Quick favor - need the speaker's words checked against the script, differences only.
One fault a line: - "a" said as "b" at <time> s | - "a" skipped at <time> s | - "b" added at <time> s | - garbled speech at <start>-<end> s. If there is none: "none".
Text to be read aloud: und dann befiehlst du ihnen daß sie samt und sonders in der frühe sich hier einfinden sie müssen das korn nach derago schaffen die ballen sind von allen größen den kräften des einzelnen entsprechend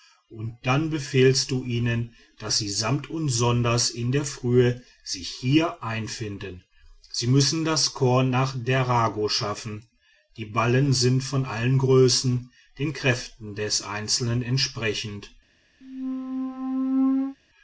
none